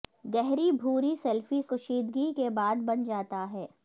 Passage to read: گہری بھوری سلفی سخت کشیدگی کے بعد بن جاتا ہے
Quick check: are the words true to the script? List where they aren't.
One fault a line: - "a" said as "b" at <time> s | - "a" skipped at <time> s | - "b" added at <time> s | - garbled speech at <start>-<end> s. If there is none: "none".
- "سخت" skipped at 1.6 s